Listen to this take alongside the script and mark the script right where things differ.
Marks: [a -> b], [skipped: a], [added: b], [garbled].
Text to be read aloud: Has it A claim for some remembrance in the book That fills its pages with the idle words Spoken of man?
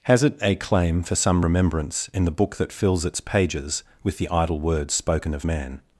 Has it A claim for some remembrance in the book That fills its pages with the idle words Spoken of man?